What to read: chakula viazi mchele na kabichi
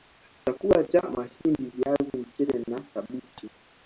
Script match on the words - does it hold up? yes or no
no